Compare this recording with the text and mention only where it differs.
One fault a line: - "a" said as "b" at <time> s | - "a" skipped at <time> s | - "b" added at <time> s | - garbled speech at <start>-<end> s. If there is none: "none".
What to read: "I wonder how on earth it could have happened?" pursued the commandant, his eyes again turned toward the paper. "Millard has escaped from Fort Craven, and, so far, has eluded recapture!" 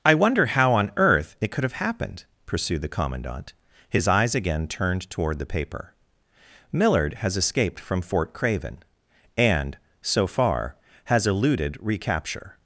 none